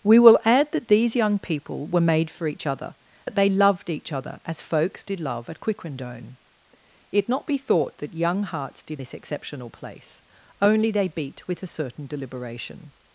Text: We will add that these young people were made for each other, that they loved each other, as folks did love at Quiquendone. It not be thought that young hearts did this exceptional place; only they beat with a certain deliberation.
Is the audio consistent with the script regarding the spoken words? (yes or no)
yes